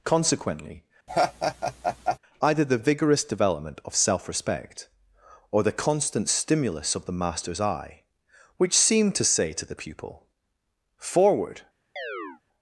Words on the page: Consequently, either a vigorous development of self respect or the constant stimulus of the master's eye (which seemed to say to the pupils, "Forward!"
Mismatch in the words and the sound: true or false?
true